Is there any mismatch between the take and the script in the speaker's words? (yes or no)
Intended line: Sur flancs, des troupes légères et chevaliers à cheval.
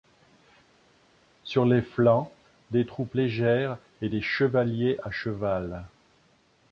yes